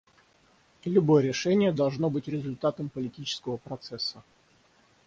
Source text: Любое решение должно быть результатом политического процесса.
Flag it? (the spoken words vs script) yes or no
no